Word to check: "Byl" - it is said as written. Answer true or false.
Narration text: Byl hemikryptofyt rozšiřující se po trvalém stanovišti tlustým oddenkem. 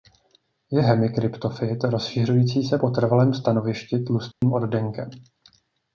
false